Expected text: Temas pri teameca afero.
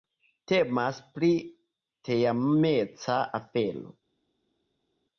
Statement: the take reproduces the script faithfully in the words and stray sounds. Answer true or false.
true